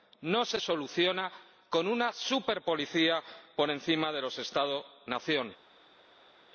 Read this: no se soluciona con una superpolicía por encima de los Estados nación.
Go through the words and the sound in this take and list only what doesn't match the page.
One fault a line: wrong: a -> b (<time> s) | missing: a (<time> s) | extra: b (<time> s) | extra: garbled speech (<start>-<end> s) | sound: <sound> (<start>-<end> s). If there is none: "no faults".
no faults